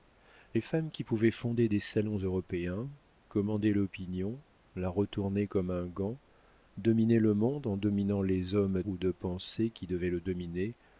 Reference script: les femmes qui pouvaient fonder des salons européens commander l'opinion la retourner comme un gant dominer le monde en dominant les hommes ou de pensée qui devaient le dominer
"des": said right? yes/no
yes